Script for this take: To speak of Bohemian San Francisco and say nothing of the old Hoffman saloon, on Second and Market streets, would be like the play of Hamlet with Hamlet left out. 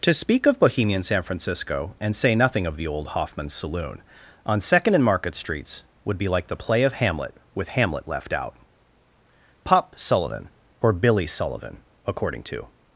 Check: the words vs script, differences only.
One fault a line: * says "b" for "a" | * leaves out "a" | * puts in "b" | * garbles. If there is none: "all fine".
* puts in "Pop Sullivan or Billy Sullivan according to"